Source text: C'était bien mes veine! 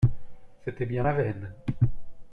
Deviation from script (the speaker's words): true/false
true